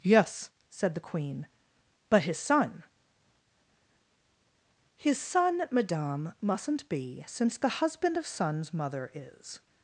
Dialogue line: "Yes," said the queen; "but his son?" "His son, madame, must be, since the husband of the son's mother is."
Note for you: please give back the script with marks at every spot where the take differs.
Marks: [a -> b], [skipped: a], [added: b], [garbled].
"Yes," said the queen; "but his son?" "His son, madame, [must -> mustn't] be, since the husband of [skipped: the] son's mother is."